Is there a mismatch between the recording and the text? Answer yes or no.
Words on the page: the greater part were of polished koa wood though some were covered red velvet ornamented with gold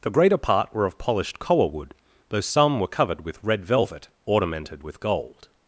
yes